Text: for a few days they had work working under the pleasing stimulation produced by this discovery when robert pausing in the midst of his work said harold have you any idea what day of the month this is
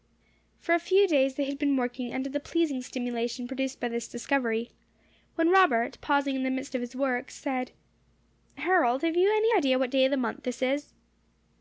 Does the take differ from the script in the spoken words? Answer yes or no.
yes